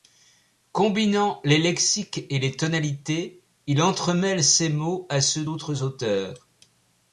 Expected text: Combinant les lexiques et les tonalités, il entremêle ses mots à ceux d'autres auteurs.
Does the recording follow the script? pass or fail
pass